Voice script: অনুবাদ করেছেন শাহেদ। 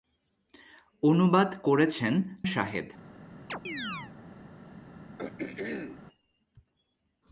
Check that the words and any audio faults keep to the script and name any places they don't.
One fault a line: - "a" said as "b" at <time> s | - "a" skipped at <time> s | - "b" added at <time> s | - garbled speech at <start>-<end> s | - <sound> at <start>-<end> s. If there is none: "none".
- chirp at 3.5-4.1 s
- throat clearing at 5.2-6.0 s